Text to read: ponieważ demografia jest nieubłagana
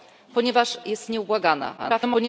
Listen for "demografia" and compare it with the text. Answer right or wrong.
wrong